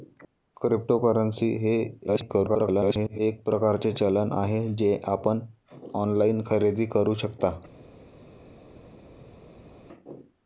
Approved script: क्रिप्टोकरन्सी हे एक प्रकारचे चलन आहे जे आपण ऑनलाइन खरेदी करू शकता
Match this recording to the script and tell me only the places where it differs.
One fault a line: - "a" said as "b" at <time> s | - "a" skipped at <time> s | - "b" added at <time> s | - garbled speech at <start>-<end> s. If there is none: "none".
- garbled speech at 2.1-3.2 s